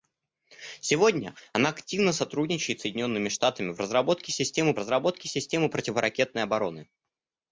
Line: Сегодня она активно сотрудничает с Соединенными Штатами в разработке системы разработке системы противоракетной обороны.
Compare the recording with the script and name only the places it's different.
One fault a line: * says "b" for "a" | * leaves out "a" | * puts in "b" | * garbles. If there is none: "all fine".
all fine